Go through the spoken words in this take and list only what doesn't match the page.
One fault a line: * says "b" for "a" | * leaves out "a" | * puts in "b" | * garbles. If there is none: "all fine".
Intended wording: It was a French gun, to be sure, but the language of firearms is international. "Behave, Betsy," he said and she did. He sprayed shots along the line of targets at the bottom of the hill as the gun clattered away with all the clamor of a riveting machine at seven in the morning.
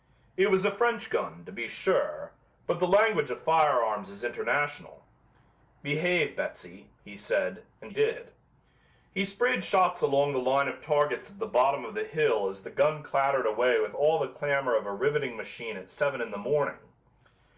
* leaves out "she"